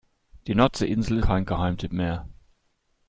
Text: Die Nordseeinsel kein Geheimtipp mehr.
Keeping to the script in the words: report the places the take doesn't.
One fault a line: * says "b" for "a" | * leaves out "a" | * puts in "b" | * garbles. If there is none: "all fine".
all fine